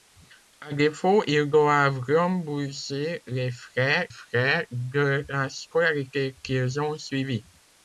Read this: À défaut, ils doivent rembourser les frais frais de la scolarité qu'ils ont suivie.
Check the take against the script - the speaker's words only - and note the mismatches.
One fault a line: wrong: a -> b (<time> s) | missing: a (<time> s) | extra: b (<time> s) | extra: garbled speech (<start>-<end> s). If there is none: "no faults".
no faults